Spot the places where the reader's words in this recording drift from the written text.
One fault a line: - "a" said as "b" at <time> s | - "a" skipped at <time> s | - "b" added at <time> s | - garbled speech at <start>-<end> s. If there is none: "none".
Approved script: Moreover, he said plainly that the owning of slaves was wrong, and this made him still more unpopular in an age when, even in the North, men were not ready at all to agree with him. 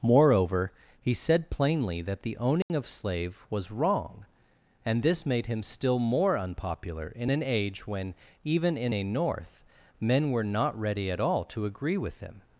- "slaves" said as "slave" at 2.9 s
- "the" said as "a" at 8.9 s